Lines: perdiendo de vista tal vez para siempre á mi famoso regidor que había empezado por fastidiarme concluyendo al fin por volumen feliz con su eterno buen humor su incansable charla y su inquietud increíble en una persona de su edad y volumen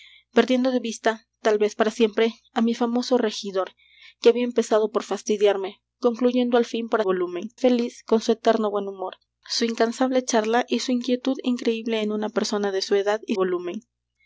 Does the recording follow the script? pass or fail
pass